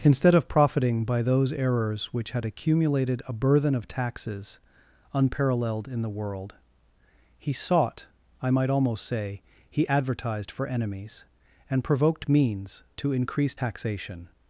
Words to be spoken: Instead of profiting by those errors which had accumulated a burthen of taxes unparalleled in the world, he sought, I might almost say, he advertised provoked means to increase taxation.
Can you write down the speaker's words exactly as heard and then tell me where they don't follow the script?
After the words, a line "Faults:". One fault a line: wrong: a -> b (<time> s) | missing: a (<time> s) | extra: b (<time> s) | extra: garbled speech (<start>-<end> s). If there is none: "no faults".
Instead of profiting by those errors which had accumulated a burthen of taxes unparalleled in the world, he sought, I might almost say, he advertised for enemies, and provoked means to increase taxation.
Faults:
extra: for enemies and (10.5 s)